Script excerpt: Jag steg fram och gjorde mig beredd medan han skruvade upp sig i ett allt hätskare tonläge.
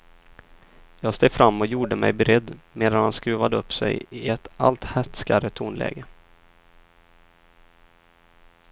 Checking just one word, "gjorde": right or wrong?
right